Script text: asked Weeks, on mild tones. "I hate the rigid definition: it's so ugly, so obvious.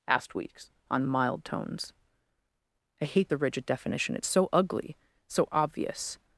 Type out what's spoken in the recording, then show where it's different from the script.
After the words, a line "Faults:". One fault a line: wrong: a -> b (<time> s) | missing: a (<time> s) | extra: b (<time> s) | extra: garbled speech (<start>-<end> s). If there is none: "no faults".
asked Weeks, on mild tones. "I hate the rigid definition: it's so ugly, so obvious.
Faults:
no faults